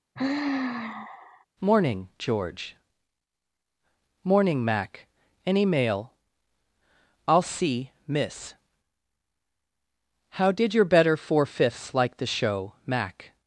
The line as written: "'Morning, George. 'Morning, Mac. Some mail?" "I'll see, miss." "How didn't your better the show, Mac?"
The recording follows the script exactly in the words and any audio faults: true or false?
false